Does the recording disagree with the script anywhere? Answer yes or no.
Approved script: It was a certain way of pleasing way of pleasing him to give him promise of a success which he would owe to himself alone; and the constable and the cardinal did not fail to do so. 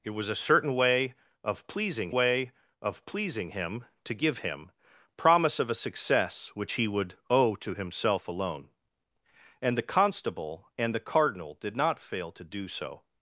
no